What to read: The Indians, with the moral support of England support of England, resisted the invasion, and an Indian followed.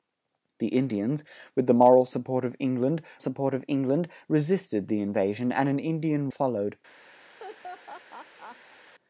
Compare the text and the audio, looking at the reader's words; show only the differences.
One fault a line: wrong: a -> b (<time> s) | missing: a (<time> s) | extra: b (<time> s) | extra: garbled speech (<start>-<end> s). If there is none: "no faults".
no faults